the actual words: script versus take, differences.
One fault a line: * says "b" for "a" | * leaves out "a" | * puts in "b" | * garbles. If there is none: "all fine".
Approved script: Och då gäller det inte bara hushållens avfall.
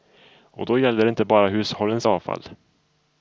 all fine